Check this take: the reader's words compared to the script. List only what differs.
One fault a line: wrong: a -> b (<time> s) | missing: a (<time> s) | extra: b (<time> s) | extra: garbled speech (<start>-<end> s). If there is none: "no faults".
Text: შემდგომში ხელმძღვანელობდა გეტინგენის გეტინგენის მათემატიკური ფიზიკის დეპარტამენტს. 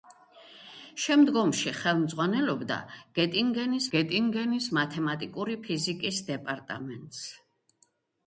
no faults